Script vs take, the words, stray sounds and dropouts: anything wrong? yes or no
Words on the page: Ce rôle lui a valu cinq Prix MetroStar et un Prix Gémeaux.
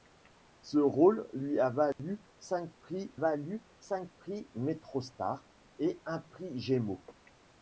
yes